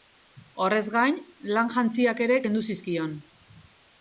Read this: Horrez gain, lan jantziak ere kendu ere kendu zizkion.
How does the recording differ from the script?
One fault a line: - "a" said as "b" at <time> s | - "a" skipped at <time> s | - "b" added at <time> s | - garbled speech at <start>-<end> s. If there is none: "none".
- "ere kendu" skipped at 2.6 s